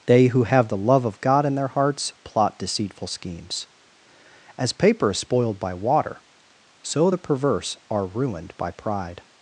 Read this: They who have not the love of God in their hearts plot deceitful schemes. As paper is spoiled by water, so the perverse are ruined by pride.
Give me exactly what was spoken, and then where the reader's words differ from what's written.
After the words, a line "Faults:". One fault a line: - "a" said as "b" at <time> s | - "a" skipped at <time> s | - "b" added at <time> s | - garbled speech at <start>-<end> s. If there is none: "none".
They who have the love of God in their hearts plot deceitful schemes. As paper is spoiled by water, so the perverse are ruined by pride.
Faults:
- "not" skipped at 0.7 s